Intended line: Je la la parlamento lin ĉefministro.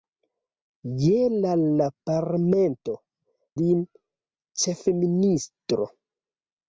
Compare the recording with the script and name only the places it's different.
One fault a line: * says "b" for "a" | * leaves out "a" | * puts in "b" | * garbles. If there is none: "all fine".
all fine